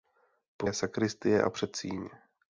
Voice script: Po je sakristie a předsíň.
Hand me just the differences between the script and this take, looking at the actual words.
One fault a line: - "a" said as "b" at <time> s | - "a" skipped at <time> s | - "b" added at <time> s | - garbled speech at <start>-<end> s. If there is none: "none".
none